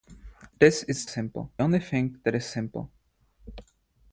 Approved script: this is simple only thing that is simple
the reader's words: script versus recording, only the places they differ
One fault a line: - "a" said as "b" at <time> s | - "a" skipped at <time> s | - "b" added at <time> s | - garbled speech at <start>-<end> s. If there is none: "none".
none